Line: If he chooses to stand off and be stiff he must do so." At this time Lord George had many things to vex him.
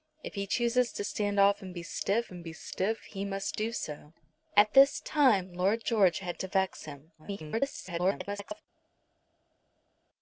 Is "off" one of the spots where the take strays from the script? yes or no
no